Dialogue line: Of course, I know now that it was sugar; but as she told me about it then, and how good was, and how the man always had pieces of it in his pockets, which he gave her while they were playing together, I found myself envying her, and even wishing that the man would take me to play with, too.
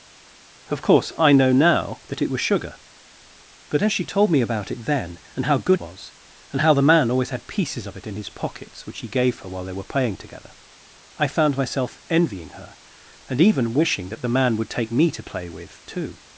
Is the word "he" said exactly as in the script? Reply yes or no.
yes